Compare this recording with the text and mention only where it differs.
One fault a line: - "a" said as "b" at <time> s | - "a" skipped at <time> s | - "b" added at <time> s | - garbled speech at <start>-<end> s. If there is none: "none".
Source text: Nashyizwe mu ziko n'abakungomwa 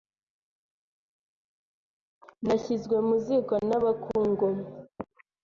none